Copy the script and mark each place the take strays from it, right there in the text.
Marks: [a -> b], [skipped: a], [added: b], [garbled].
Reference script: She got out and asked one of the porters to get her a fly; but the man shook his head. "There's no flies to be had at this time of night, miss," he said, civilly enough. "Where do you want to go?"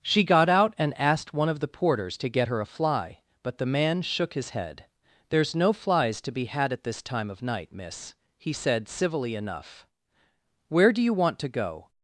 She got out and asked one of the porters to get her a fly; but the man shook his head. "There's no flies to be had at this time of night, miss," he said, civilly enough. "Where do you want to go?"